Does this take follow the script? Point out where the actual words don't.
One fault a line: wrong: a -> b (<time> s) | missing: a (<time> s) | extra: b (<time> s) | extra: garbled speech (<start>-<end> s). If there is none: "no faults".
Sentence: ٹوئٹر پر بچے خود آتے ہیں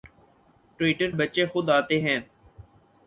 missing: پر (1.1 s)